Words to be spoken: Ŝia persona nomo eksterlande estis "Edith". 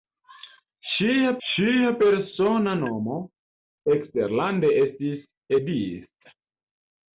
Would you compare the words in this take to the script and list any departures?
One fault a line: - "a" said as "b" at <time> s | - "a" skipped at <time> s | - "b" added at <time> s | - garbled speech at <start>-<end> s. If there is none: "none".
- "ŝia" added at 1.5 s